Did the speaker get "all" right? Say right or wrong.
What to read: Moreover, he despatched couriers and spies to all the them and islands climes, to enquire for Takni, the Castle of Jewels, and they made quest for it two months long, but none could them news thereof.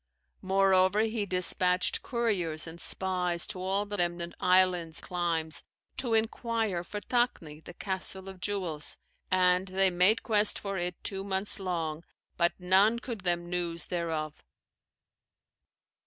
right